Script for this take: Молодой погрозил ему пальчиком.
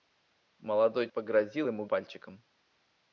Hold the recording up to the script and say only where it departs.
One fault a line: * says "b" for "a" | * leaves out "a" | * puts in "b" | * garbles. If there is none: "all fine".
all fine